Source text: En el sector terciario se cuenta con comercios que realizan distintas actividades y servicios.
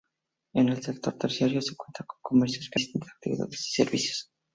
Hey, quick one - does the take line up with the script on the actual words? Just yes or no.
no